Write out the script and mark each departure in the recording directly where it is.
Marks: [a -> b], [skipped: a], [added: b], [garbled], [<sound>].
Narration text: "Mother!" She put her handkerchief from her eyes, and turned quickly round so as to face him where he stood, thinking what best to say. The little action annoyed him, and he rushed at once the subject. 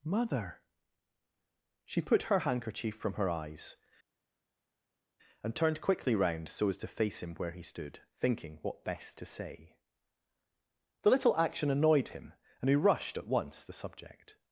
"Mother!" She put her handkerchief from her eyes, and turned quickly round so as to face him where he stood, thinking what best to say. The little action annoyed him, and he rushed at once the subject.